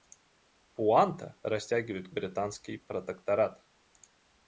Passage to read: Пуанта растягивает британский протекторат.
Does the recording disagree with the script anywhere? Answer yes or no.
no